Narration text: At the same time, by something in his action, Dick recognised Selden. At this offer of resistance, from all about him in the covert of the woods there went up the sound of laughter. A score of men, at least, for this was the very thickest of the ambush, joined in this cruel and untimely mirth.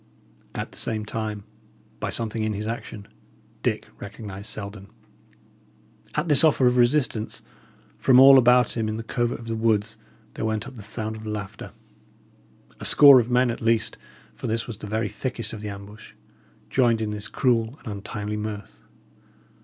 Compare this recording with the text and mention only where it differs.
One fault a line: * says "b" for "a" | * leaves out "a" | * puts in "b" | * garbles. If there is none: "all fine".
all fine